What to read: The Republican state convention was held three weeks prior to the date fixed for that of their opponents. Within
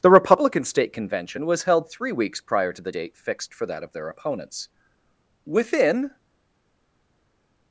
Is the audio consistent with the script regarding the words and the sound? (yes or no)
yes